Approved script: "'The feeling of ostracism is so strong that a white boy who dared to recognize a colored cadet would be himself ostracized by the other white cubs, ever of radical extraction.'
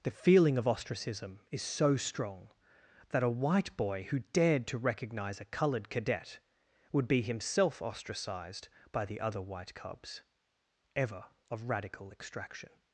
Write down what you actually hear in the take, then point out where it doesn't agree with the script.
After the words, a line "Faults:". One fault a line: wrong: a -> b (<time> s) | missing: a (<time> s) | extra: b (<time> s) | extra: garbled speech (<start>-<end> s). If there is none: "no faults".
"'The feeling of ostracism is so strong that a white boy who dared to recognize a colored cadet would be himself ostracized by the other white cubs, ever of radical extraction.'
Faults:
no faults